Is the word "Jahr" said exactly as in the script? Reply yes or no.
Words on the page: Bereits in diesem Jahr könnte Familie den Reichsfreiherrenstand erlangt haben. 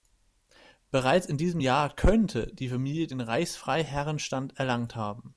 yes